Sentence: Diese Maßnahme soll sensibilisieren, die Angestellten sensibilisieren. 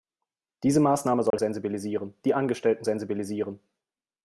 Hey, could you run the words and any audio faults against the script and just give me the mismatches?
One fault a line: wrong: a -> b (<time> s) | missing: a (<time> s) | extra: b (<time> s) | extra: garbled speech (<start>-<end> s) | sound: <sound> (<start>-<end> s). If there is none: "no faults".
sound: dropout (1.3-1.3 s)